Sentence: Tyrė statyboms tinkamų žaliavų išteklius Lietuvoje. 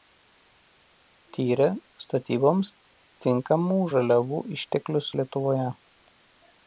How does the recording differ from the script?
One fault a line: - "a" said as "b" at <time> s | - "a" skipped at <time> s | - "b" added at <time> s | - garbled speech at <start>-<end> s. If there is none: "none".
none